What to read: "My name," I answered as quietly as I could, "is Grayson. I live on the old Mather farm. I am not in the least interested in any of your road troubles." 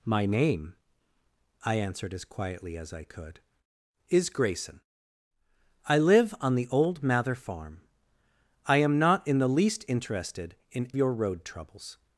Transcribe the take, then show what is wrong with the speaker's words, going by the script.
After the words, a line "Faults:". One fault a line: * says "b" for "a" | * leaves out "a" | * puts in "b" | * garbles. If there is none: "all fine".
"My name," I answered as quietly as I could, "is Grayson. I live on the old Mather farm. I am not in the least interested in your road troubles."
Faults:
* leaves out "any of"